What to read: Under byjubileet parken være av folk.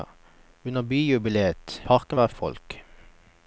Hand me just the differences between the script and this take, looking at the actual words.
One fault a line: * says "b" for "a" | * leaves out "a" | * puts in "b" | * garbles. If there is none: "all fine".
all fine